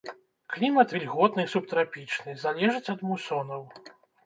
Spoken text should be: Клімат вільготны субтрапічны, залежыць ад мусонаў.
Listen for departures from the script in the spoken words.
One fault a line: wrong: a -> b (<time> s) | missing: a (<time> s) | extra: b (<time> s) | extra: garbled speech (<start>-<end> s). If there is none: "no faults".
no faults